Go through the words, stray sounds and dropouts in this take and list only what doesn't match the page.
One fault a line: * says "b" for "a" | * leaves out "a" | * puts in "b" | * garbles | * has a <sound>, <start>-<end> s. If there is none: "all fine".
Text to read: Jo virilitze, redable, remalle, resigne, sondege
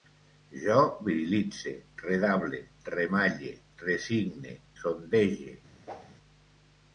* has a whoosh, 5.9-6.2 s